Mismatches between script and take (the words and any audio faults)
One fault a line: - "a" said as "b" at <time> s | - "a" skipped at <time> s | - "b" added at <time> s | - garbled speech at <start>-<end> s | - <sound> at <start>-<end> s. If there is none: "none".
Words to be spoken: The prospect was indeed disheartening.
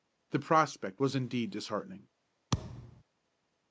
- thud at 2.5-3.0 s